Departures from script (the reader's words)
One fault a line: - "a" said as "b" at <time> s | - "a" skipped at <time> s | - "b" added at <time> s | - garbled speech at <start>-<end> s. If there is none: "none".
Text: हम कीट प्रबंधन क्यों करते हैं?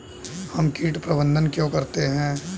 none